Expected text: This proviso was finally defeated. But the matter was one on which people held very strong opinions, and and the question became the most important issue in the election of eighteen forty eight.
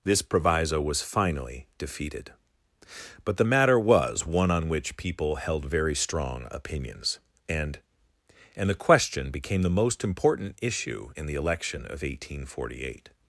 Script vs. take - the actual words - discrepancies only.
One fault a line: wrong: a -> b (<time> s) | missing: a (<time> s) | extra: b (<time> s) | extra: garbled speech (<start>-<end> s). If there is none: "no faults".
no faults